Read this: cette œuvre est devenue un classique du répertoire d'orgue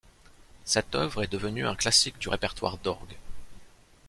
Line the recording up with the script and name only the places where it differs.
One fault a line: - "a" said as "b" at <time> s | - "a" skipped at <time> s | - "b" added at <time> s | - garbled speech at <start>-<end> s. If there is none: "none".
none